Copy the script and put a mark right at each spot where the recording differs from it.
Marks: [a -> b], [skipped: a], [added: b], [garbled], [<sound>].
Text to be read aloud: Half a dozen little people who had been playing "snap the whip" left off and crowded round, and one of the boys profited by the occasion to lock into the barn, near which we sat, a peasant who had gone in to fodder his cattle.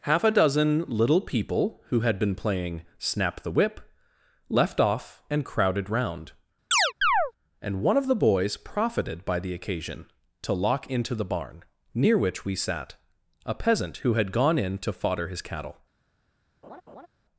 Half a dozen little people who had been playing "snap the whip" left off and crowded round, [chirp] and one of the boys profited by the occasion to lock into the barn, near which we sat, a peasant who had gone in to fodder his cattle. [laugh]